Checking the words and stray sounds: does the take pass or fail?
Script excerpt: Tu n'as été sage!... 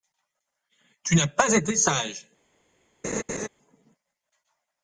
fail